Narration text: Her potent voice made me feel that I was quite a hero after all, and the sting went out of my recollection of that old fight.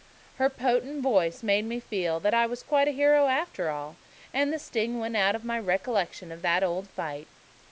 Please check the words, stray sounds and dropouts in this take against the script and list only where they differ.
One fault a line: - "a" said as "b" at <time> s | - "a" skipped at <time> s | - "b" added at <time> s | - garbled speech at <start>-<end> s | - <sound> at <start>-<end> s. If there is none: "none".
none